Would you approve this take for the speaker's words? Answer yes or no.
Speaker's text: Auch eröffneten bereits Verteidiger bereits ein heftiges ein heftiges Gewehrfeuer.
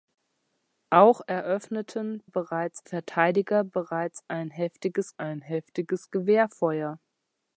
yes